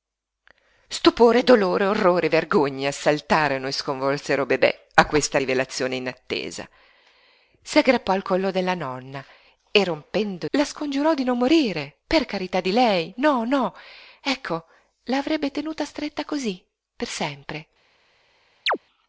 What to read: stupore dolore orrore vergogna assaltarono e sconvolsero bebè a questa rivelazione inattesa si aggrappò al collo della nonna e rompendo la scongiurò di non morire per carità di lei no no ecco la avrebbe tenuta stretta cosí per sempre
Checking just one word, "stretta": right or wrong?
right